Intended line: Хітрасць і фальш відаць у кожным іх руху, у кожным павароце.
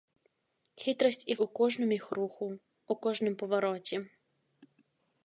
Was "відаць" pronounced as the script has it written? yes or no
no